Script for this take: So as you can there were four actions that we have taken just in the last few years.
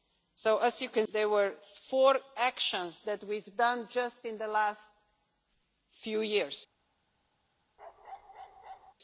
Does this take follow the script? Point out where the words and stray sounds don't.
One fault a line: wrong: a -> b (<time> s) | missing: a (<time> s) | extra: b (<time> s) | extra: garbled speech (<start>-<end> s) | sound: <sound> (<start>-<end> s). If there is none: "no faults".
sound: bark (7.8-8.9 s)